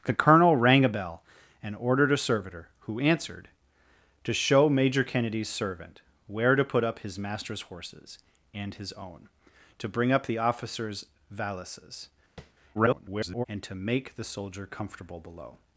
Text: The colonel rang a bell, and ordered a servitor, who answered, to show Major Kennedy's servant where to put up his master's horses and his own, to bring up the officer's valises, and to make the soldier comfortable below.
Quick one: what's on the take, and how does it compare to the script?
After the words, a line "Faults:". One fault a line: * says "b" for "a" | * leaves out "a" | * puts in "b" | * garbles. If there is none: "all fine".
The colonel rang a bell, and ordered a servitor, who answered, to show Major Kennedy's servant where to put up his master's horses and his own, to bring up the officer's valises, [garbled] and to make the soldier comfortable below.
Faults:
* garbles